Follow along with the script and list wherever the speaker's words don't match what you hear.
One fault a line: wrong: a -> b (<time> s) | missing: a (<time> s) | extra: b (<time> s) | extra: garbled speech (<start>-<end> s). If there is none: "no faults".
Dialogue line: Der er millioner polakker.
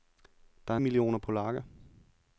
no faults